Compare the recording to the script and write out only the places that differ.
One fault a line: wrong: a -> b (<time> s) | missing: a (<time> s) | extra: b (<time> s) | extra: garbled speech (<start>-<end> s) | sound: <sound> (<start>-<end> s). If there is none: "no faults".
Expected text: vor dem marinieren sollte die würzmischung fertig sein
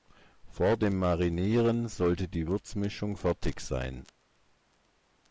no faults